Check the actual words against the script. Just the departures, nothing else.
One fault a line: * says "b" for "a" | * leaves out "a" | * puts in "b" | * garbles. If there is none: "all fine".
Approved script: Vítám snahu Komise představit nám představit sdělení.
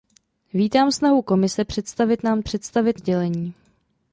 all fine